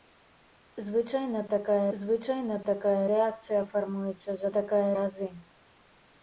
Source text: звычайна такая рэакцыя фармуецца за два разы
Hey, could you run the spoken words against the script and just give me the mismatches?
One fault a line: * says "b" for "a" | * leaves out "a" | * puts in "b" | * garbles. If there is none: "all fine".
* puts in "звычайна такая"
* says "такая" for "два"